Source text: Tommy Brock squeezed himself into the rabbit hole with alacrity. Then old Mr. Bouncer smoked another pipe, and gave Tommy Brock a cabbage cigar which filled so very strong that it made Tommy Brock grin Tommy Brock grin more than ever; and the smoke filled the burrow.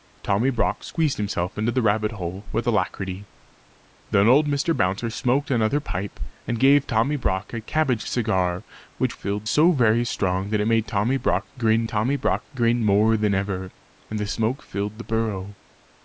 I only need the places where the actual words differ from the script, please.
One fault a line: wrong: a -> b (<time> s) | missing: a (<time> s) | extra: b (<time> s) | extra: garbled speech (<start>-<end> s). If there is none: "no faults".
no faults